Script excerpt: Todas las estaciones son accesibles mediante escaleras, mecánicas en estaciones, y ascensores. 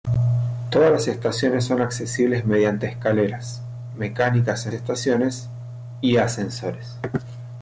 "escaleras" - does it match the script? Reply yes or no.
yes